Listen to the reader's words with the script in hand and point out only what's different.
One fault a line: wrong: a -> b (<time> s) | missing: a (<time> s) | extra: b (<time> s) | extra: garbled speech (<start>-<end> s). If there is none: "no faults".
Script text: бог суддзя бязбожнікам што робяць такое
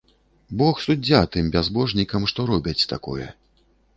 extra: тым (1.3 s)